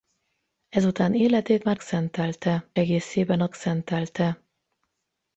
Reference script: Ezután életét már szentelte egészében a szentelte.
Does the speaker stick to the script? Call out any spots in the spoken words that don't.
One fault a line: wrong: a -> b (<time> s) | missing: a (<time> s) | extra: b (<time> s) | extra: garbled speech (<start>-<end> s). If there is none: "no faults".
no faults